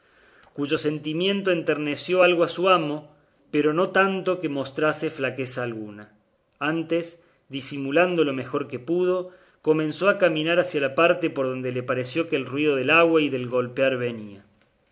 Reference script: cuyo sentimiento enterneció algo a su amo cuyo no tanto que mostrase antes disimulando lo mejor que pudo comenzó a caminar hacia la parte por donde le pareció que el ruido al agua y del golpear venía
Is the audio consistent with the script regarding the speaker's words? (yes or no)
no